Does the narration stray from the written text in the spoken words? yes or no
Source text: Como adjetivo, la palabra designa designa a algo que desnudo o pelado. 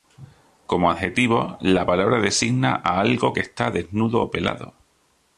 yes